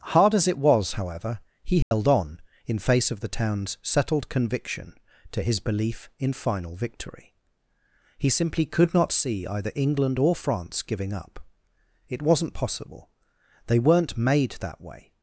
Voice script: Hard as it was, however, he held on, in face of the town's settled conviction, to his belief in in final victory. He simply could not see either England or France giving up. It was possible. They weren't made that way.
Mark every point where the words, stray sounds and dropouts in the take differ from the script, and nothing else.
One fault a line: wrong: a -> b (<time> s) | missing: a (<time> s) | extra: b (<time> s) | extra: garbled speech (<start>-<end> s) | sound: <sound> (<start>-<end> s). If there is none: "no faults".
sound: dropout (1.8-1.9 s)
missing: in (6.3 s)
wrong: was -> wasn't (12.2 s)